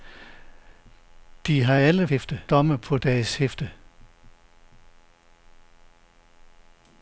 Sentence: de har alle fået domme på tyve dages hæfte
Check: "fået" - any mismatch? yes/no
yes